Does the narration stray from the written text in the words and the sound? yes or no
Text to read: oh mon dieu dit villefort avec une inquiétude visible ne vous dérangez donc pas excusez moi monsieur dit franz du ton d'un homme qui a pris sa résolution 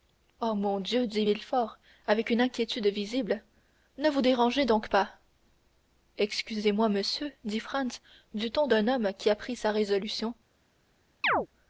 yes